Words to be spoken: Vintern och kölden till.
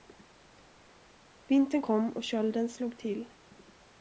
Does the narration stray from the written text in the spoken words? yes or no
yes